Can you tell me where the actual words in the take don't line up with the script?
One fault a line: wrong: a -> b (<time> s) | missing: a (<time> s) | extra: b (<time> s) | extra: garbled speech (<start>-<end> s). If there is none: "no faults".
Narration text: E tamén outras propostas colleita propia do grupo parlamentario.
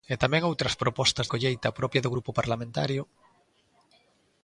no faults